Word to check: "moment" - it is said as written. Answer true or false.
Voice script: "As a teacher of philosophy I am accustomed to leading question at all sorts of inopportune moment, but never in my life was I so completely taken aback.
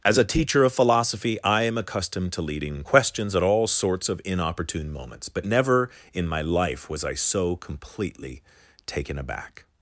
false